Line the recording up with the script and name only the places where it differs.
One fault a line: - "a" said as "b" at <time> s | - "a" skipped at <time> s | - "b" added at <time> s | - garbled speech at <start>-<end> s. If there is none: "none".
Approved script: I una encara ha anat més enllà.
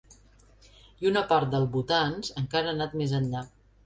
- "part del votants" added at 1.3 s